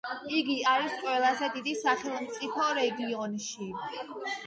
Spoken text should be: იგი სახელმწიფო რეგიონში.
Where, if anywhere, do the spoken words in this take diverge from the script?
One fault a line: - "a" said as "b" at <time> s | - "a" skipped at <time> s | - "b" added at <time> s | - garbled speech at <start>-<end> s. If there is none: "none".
- "არის ყველაზე დიდი" added at 0.7 s